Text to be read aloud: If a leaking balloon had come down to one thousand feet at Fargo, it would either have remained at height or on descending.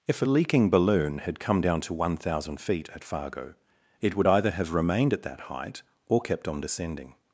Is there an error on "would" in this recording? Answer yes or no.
no